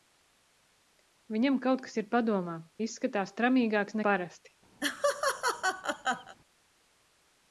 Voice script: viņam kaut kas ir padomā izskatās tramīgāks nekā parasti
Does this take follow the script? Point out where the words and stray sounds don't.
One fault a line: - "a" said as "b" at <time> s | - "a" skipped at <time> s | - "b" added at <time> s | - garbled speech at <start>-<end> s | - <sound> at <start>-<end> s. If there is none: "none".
- "nekā" skipped at 4.0 s
- laugh at 4.8-6.3 s